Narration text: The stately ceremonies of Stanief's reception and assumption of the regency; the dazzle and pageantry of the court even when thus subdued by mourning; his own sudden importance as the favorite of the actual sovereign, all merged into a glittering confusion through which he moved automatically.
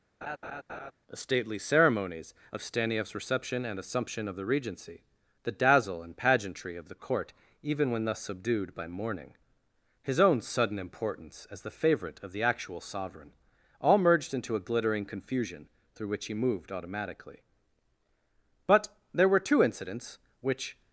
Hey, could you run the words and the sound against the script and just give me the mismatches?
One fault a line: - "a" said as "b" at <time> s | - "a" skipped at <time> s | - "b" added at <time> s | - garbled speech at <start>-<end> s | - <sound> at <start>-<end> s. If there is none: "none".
- laugh at 0.2-0.9 s
- "But there were two incidents which" added at 18.7 s